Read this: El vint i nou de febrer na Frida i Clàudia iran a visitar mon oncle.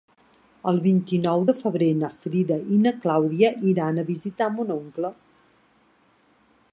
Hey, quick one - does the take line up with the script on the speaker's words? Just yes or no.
no